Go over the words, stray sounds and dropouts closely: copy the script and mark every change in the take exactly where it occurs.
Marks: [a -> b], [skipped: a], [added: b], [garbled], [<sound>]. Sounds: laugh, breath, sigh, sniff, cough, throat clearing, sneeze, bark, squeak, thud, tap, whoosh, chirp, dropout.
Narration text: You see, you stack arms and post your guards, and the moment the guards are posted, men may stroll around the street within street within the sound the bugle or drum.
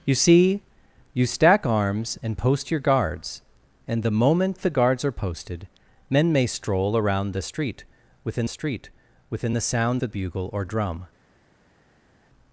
You see, you stack arms and post your guards, and the moment the guards are posted, men may stroll around the street within street within the sound the bugle or drum.